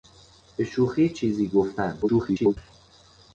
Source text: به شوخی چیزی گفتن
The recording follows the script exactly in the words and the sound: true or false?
false